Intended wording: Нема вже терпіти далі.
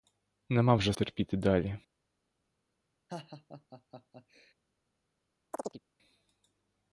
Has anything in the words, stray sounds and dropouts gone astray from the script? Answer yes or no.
yes